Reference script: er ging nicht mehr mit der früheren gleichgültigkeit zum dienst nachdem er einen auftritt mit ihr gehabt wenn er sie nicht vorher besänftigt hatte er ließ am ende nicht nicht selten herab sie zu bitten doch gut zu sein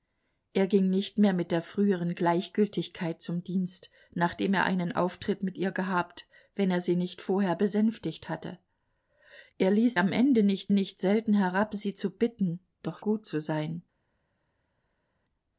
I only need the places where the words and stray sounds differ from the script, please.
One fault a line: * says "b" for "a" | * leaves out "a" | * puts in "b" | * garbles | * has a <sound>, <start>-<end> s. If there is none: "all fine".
all fine